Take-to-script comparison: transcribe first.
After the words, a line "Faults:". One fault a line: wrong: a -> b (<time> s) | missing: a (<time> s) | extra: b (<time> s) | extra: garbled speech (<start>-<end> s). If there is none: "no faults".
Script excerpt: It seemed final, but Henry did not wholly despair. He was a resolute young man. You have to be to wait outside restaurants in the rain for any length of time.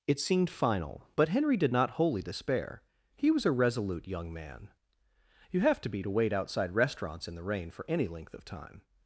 It seemed final, but Henry did not wholly despair. He was a resolute young man. You have to be to wait outside restaurants in the rain for any length of time.
Faults:
no faults